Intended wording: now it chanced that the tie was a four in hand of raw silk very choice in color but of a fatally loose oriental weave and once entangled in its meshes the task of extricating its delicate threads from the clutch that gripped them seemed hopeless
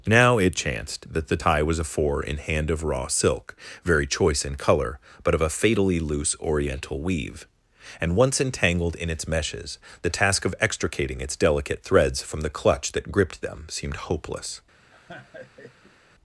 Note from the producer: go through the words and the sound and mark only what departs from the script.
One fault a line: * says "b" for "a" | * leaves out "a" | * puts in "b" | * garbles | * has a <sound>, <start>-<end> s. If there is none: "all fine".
* has a laugh, 14.9-16.0 s